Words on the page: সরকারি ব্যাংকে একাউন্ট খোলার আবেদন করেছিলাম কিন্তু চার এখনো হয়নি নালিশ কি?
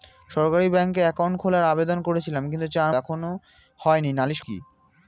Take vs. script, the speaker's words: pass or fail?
pass